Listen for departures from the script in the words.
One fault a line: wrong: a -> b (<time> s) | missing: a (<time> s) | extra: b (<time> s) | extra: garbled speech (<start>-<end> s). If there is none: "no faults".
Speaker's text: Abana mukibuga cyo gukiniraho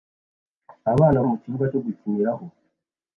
no faults